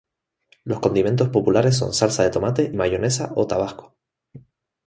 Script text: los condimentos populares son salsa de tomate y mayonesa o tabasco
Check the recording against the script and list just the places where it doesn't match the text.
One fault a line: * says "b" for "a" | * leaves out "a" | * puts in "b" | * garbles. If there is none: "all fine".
* leaves out "y"